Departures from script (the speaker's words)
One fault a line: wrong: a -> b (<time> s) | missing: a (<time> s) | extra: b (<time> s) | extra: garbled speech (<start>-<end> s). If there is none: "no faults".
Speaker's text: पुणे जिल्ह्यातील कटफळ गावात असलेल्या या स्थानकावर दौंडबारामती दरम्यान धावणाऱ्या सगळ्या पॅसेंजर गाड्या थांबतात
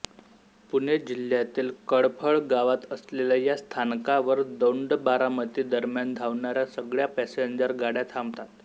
no faults